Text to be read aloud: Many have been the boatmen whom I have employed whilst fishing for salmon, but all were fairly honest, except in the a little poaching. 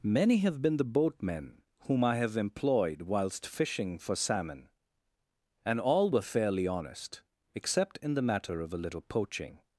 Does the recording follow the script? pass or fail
fail